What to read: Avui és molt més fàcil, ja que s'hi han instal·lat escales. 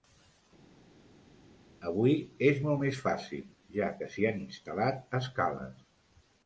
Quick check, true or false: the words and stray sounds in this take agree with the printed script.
true